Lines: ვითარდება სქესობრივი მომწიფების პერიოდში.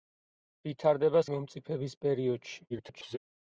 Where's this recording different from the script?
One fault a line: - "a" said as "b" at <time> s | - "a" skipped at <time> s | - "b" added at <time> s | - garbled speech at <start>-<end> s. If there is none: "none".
- "სქესობრივი" skipped at 1.2 s
- garbled speech at 2.7-3.2 s